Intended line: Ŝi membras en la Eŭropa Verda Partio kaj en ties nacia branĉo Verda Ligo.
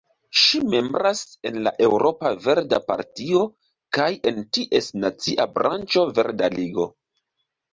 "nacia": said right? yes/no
yes